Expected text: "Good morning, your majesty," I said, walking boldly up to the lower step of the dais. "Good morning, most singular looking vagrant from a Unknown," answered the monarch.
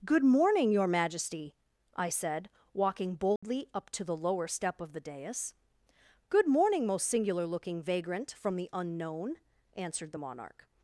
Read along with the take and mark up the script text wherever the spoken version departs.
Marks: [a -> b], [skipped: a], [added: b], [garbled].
"Good morning, your majesty," I said, walking boldly up to the lower step of the dais. "Good morning, most singular looking vagrant from [a -> the] Unknown," answered the monarch.